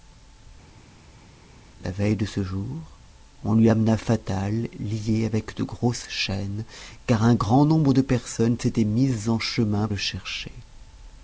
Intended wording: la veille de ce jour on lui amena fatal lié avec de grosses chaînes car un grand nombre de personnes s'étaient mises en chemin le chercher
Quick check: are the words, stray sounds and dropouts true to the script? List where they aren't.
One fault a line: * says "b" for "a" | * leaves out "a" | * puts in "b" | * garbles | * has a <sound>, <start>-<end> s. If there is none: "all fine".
all fine